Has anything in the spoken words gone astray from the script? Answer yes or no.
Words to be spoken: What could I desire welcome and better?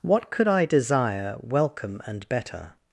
no